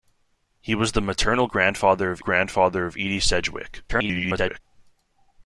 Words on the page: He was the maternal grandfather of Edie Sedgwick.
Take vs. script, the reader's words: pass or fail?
fail